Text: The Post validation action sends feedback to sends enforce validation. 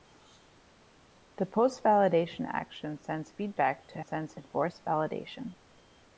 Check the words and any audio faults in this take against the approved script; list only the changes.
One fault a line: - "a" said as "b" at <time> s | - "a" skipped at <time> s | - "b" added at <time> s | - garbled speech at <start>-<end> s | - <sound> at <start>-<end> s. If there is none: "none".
none